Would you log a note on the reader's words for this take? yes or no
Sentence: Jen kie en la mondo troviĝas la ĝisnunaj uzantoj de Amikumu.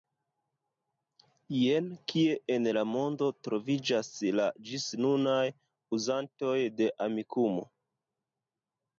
no